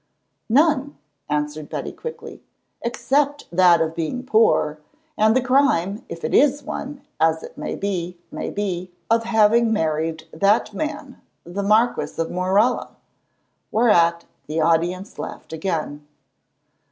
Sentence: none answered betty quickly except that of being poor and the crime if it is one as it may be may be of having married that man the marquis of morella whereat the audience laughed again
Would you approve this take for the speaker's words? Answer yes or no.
yes